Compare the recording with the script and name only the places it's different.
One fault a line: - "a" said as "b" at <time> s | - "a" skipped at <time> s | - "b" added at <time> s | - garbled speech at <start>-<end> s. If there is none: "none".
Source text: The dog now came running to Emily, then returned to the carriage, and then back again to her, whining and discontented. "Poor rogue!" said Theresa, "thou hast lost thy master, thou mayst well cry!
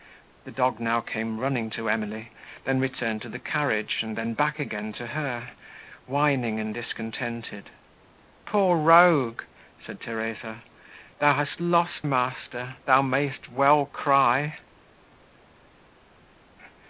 - "thy" skipped at 12.0 s